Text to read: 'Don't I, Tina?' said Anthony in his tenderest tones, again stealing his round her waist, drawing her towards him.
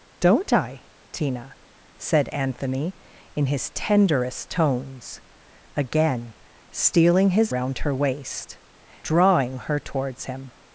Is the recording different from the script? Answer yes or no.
no